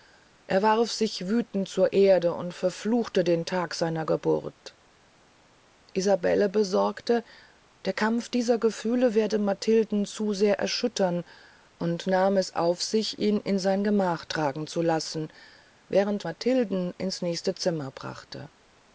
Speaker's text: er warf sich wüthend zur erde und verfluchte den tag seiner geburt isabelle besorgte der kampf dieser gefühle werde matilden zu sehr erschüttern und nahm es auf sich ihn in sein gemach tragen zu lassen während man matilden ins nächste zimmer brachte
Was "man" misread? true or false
true